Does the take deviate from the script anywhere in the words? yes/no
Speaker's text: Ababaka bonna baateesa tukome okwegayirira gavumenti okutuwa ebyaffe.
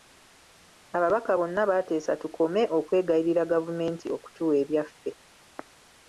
no